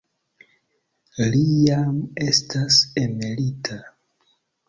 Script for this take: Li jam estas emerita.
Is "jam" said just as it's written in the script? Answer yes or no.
yes